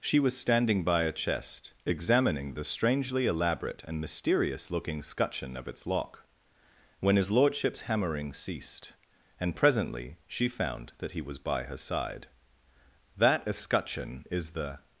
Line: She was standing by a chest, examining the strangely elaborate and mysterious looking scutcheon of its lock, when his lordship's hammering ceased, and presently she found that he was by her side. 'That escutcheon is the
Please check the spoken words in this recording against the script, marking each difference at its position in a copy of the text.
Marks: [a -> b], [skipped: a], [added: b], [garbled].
She was standing by a chest, examining the strangely elaborate and mysterious looking scutcheon of its lock, when his lordship's hammering ceased, and presently she found that he was by her side. 'That escutcheon is the